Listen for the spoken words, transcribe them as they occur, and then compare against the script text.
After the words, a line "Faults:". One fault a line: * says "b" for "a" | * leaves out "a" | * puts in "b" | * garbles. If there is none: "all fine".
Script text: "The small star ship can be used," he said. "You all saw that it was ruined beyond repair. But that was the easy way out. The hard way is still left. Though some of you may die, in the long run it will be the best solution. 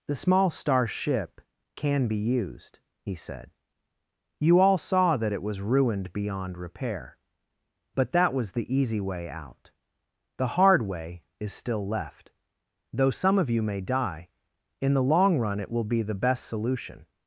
"The small star ship can be used," he said. "You all saw that it was ruined beyond repair. But that was the easy way out. The hard way is still left. Though some of you may die, in the long run it will be the best solution.
Faults:
all fine